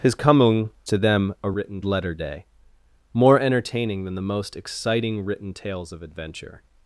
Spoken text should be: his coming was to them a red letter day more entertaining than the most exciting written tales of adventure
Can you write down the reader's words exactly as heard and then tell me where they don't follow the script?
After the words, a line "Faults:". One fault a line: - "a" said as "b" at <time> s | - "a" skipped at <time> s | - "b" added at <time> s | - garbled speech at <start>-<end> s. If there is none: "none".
his coming to them a written letter day more entertaining than the most exciting written tales of adventure
Faults:
- "was" skipped at 0.7 s
- "red" said as "written" at 1.5 s